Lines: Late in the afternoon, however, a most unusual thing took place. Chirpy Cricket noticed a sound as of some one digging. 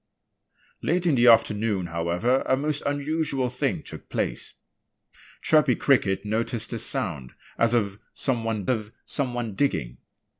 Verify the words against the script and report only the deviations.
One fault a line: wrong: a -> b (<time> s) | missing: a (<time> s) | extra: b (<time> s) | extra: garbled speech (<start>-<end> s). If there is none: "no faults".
extra: of some one (8.7 s)